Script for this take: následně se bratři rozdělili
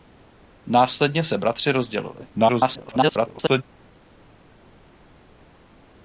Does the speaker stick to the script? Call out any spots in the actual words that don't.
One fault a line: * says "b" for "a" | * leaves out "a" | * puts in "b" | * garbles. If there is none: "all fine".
* garbles